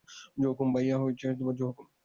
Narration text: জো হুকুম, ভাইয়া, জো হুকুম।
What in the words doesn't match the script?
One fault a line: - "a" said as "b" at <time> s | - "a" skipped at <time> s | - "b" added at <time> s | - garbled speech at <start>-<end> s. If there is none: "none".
none